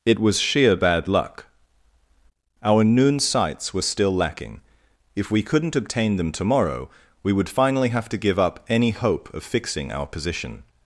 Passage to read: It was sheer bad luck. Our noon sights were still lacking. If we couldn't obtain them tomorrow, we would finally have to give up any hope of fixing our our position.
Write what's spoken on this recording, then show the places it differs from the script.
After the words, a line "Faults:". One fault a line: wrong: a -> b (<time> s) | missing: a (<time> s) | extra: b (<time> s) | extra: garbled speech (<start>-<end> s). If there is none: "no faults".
It was sheer bad luck. Our noon sights were still lacking. If we couldn't obtain them tomorrow, we would finally have to give up any hope of fixing our position.
Faults:
missing: our (10.1 s)